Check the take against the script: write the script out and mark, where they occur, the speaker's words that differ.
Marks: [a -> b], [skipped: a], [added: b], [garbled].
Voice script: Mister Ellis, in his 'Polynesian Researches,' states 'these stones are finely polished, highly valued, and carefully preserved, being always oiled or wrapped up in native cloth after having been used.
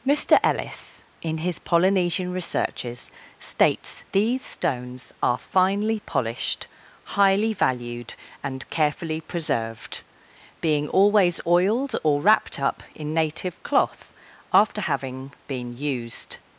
Mister Ellis, in his 'Polynesian Researches,' states 'these stones are finely polished, highly valued, and carefully preserved, being always oiled or wrapped up in native cloth after having been used.